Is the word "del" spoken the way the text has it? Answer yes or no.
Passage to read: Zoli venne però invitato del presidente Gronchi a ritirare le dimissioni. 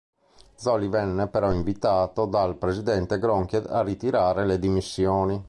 no